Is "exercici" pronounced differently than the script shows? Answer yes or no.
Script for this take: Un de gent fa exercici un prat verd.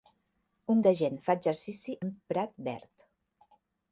no